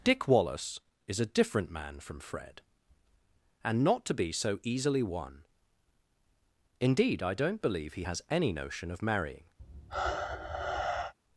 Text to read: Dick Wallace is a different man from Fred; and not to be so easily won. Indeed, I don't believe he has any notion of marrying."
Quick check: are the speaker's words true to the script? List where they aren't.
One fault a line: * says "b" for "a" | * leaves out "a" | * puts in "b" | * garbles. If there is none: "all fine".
all fine